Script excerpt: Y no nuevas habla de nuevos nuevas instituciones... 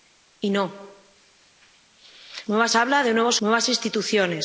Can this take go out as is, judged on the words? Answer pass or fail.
pass